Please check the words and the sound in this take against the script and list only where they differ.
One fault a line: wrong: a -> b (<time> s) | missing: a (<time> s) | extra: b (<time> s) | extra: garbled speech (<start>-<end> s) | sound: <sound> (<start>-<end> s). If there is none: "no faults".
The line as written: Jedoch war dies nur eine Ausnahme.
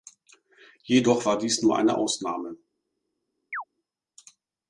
sound: chirp (3.5-3.6 s)